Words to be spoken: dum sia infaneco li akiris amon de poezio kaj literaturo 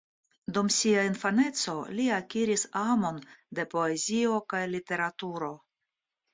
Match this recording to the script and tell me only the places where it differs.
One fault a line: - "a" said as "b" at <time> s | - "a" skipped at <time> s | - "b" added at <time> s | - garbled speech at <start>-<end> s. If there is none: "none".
none